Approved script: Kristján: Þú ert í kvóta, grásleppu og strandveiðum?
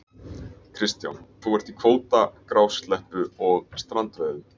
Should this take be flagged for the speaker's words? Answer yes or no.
no